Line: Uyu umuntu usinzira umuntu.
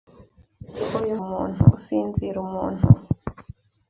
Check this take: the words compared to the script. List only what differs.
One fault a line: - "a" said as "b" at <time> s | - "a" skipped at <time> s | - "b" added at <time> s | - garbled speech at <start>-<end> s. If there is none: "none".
none